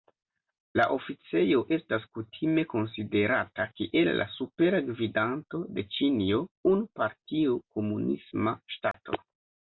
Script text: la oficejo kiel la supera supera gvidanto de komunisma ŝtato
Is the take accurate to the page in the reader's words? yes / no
no